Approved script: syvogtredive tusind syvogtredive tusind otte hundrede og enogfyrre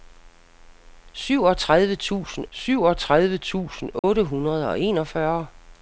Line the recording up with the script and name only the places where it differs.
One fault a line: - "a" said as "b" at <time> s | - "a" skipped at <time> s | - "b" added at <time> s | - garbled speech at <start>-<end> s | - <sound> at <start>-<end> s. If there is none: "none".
- dropout at 4.0-4.0 s